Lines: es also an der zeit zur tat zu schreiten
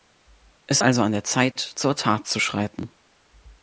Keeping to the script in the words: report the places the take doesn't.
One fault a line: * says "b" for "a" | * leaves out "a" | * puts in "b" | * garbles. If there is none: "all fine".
all fine